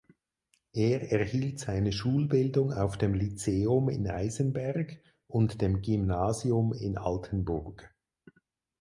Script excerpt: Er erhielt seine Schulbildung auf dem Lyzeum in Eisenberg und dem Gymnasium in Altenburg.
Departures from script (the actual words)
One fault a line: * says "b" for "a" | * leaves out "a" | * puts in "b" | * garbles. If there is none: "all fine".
all fine